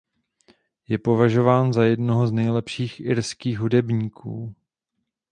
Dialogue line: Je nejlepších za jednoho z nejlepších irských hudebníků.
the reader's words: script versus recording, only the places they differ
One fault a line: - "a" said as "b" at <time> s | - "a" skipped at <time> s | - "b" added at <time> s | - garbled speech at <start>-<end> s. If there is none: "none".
- "nejlepších" said as "považován" at 1.0 s